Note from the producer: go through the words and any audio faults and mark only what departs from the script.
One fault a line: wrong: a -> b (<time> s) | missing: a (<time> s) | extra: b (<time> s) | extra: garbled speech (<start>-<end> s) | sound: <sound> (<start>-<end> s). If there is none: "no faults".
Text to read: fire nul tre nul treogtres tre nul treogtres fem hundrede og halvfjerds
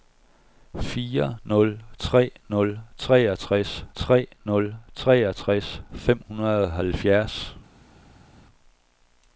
no faults